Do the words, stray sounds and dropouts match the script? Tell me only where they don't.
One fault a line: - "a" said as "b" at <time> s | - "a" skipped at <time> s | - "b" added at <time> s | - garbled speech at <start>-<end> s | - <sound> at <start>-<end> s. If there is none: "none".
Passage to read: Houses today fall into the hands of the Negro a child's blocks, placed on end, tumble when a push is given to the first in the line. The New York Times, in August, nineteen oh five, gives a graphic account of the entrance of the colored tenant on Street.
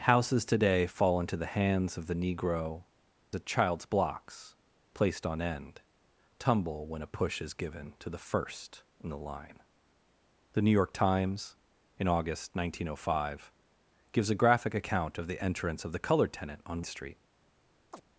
- chirp at 17.9-18.0 s